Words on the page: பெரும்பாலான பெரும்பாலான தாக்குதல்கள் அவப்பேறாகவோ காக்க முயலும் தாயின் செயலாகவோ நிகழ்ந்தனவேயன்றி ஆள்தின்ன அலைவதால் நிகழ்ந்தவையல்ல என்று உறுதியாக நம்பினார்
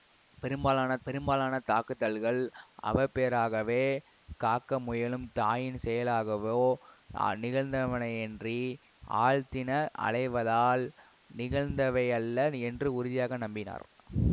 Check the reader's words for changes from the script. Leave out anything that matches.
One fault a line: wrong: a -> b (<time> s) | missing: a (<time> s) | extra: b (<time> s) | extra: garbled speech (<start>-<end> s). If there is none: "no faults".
no faults